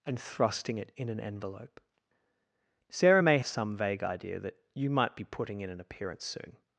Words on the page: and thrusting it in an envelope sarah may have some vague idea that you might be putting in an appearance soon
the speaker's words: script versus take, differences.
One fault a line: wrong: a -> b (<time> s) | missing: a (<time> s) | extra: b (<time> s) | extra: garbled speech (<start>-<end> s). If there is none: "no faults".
missing: have (3.4 s)